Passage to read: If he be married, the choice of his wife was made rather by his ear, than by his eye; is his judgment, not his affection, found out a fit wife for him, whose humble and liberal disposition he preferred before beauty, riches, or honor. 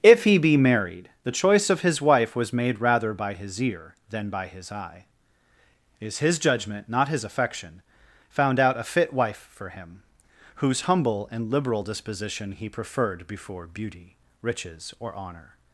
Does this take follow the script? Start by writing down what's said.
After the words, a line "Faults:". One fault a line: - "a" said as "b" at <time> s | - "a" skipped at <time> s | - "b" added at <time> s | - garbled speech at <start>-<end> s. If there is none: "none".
If he be married, the choice of his wife was made rather by his ear, than by his eye; is his judgment, not his affection, found out a fit wife for him, whose humble and liberal disposition he preferred before beauty, riches, or honor.
Faults:
none